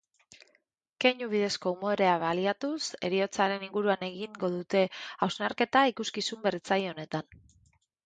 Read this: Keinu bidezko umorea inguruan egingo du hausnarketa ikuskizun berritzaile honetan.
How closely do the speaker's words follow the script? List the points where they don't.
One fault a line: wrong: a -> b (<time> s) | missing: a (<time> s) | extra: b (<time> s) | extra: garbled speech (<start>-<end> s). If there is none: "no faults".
extra: baliatuz heriotzaren (2.2 s)
wrong: du -> dute (4.6 s)